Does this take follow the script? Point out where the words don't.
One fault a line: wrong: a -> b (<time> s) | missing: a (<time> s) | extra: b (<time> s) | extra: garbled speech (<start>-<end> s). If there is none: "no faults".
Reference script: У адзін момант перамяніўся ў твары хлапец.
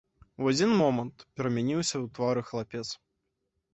no faults